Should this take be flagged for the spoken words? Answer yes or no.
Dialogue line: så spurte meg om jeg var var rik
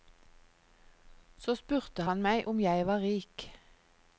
yes